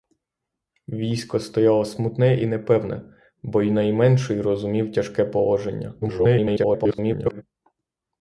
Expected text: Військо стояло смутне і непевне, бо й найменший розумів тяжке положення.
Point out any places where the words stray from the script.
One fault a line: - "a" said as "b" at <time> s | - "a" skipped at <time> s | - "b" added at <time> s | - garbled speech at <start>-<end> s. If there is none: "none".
- garbled speech at 6.0-7.4 s